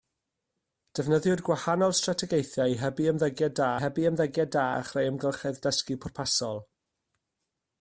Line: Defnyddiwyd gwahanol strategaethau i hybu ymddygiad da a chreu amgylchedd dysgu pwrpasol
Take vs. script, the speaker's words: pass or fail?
fail